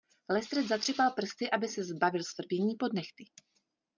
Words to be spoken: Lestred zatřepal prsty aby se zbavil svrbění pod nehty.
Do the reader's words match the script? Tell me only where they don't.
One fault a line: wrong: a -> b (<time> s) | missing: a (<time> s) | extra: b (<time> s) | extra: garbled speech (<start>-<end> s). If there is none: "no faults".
no faults